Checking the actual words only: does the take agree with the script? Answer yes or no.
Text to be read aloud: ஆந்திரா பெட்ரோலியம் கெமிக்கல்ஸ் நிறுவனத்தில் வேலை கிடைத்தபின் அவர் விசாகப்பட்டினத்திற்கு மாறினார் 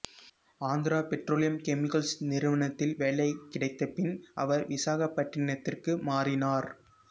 yes